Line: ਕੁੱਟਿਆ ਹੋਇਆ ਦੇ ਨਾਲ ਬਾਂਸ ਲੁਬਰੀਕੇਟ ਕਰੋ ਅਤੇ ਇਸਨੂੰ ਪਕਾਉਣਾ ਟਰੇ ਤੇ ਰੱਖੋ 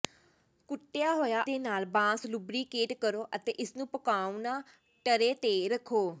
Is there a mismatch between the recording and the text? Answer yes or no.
no